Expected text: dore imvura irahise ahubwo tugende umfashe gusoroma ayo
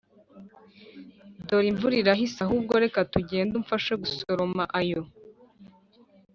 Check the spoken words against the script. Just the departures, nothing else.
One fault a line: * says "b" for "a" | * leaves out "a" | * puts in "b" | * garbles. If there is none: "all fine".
* puts in "reka"